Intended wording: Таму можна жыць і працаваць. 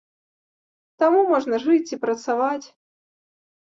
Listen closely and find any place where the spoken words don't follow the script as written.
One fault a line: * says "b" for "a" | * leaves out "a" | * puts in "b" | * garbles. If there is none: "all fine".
all fine